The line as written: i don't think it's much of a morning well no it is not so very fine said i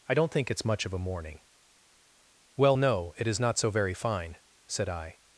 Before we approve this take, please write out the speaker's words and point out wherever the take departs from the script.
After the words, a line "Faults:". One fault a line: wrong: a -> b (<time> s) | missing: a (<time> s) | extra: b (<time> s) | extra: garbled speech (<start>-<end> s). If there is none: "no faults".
i don't think it's much of a morning well no it is not so very fine said i
Faults:
no faults